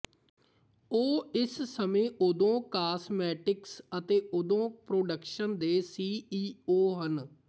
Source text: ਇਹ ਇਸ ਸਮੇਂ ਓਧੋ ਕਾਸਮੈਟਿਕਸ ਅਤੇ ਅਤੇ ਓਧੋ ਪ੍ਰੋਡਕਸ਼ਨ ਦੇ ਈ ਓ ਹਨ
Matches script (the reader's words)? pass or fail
fail